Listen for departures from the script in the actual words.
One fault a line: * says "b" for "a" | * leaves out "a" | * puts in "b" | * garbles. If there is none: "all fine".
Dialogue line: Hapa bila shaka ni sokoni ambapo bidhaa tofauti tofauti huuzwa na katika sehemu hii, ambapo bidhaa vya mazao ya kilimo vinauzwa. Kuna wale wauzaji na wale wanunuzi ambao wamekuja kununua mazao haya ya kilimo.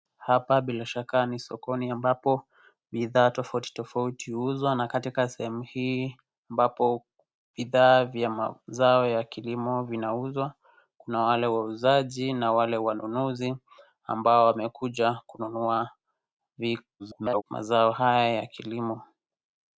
* garbles